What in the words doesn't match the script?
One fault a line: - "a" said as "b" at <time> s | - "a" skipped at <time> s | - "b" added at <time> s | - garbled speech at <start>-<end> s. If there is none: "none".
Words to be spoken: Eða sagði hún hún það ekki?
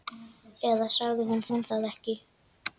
none